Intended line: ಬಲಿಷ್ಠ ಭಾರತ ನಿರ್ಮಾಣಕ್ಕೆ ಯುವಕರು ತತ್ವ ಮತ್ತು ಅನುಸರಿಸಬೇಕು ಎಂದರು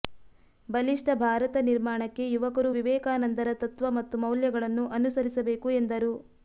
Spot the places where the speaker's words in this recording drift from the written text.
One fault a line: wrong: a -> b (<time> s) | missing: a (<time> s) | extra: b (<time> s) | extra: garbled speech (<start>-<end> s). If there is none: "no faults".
extra: ವಿವೇಕಾನಂದರ (2.8 s)
extra: ಮೌಲ್ಯಗಳನ್ನು (4.2 s)